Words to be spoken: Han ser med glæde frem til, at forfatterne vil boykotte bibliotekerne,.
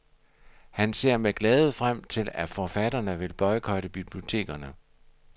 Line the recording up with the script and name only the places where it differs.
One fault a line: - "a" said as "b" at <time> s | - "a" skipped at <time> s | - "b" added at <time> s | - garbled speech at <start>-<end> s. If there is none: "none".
none